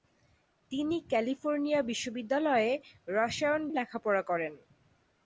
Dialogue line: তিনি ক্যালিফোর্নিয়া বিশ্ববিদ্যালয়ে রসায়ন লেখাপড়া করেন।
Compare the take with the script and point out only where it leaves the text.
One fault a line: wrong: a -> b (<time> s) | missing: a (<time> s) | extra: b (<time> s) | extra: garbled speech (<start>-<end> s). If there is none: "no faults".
no faults